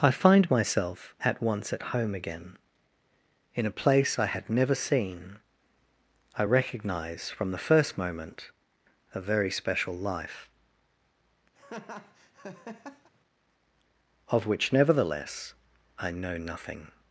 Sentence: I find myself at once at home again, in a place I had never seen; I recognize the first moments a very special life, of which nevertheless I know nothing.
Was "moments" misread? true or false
true